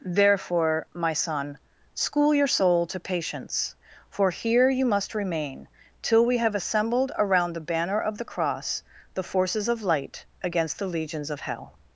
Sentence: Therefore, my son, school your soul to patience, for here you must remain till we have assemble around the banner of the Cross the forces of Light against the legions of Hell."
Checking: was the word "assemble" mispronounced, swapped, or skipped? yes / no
yes